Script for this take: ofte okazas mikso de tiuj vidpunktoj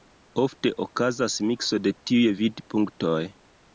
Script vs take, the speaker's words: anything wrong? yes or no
no